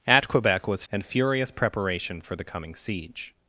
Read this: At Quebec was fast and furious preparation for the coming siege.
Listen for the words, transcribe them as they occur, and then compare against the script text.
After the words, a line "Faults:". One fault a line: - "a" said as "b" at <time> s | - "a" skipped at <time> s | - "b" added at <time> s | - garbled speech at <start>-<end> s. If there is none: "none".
At Quebec was and furious preparation for the coming siege.
Faults:
- "fast" skipped at 0.8 s